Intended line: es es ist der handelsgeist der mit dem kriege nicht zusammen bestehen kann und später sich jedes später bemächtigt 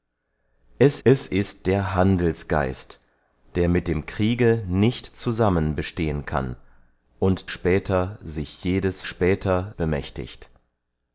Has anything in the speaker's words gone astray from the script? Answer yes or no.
no